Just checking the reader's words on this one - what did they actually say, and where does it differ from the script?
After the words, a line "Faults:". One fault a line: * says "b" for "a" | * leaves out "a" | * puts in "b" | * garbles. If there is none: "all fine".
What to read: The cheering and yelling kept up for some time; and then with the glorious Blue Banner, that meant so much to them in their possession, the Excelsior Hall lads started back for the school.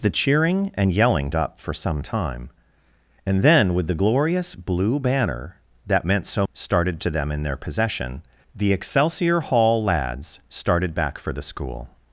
The cheering and yelling up for some time; and then with the glorious Blue Banner, that meant so started to them in their possession, the Excelsior Hall lads started back for the school.
Faults:
* leaves out "kept"
* says "started" for "much"